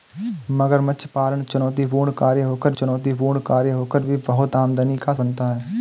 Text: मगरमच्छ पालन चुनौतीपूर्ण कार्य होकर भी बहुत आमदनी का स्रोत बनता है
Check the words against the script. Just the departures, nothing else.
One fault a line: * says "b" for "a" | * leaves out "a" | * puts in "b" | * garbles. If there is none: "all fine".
* puts in "चुनौतीपूर्ण कार्य होकर"
* leaves out "स्रोत"